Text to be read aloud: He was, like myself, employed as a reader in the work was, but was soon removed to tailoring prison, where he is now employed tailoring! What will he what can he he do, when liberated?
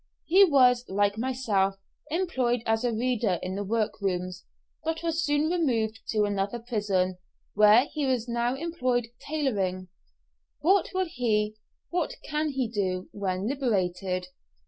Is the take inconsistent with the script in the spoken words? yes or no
yes